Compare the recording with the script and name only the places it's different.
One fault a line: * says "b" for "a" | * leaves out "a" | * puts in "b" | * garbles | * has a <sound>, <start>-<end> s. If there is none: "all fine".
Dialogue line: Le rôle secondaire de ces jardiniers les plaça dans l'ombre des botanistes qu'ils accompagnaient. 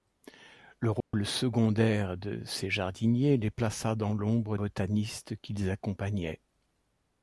* has a dropout, 1.0-1.1 s
* leaves out "des"